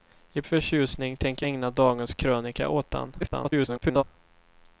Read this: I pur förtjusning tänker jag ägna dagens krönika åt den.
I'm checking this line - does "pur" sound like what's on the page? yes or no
no